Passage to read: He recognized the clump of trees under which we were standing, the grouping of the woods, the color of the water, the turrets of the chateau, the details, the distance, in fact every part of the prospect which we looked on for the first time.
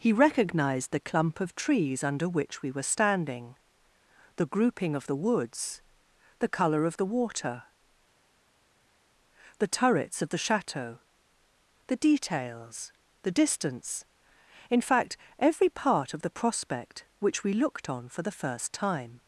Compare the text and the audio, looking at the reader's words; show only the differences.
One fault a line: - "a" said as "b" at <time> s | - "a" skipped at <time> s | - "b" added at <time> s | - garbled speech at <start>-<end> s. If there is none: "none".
none